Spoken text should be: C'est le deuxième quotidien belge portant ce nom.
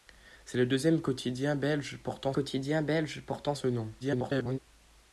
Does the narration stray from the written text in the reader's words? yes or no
yes